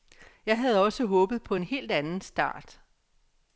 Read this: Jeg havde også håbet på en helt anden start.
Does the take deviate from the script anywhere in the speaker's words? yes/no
no